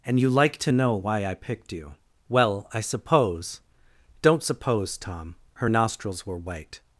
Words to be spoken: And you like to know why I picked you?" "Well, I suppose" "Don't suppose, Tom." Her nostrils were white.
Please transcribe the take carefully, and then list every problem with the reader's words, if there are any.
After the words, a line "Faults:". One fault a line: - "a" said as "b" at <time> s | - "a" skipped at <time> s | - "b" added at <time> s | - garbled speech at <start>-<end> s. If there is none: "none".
And you like to know why I picked you?" "Well, I suppose" "Don't suppose, Tom." Her nostrils were white.
Faults:
none